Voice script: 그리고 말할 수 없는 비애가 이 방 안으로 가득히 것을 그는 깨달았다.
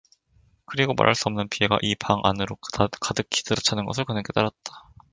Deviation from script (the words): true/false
true